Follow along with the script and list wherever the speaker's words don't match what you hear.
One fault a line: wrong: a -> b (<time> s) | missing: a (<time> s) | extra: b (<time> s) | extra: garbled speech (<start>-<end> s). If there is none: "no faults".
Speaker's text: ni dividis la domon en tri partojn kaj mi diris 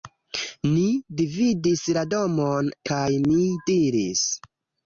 missing: en tri partojn (2.7 s)